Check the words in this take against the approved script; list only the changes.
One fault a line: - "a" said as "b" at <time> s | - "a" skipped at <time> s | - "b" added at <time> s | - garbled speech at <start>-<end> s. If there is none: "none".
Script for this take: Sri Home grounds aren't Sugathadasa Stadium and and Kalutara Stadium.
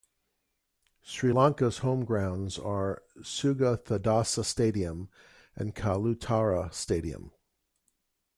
- "Lanka's" added at 1.3 s
- "aren't" said as "are" at 2.6 s
- "and" skipped at 5.7 s